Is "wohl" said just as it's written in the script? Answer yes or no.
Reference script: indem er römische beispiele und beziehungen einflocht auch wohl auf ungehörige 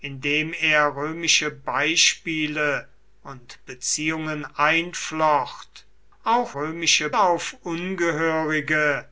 no